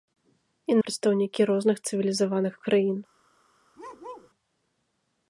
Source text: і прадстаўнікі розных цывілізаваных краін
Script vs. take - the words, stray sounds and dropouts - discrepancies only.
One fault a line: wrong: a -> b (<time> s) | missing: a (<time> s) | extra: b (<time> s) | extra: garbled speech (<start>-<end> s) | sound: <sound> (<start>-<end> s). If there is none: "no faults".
sound: bark (3.8-4.3 s)